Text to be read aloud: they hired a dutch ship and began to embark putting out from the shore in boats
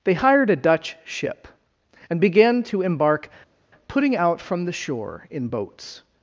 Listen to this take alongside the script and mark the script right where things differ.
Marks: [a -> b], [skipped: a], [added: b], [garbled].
they hired a dutch ship and began to embark putting out from the shore in boats